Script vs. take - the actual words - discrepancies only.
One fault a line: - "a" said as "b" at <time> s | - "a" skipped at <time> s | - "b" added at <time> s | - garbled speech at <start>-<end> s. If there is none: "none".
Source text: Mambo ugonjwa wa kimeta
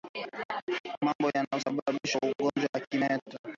- "yanayosababisha" added at 1.3 s